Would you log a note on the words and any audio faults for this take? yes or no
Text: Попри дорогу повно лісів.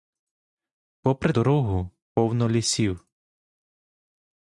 no